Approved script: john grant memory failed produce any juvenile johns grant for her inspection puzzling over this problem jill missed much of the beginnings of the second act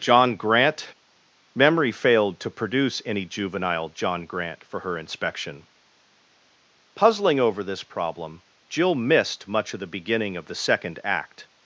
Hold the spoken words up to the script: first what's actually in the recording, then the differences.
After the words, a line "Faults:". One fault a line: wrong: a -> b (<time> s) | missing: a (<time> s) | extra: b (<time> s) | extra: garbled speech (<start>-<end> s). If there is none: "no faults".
john grant memory failed to produce any juvenile john grant for her inspection puzzling over this problem jill missed much of the beginning of the second act
Faults:
extra: to (2.4 s)
wrong: johns -> john (3.9 s)
wrong: beginnings -> beginning (9.8 s)